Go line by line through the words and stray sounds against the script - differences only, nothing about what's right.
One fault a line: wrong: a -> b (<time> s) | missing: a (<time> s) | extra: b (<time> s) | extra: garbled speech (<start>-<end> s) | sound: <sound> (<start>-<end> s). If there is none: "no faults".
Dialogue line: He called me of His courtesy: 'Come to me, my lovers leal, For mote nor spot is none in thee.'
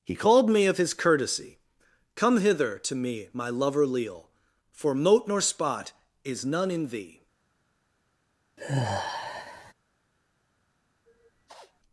extra: hither (2.4 s)
wrong: lovers -> lover (3.5 s)
sound: sigh (8.6-9.7 s)
sound: sniff (11.1-11.8 s)